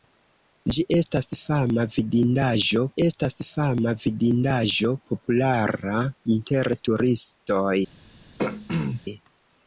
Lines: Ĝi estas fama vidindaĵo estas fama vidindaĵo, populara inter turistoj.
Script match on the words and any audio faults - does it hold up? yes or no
no